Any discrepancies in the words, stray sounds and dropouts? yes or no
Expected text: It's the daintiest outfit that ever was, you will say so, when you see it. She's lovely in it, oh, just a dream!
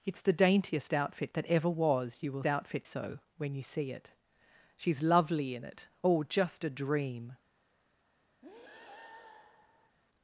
yes